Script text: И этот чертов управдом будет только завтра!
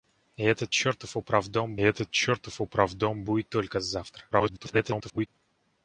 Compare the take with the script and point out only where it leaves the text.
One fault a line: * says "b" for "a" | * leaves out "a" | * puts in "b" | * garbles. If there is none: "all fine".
* puts in "этот чертов управдом"
* garbles